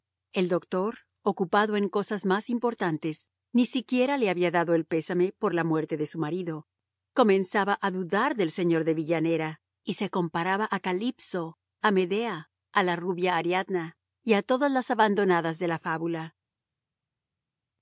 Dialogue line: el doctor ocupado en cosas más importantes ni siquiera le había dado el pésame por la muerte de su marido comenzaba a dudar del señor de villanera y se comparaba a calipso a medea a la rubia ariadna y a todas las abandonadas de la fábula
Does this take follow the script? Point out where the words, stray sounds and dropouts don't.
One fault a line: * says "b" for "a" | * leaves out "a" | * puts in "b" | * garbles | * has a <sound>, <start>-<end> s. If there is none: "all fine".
all fine